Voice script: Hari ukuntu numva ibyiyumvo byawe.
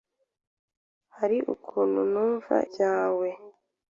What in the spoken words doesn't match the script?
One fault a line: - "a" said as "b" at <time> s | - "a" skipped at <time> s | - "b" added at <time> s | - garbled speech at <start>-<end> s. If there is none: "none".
- "ibyiyumvo" skipped at 2.5 s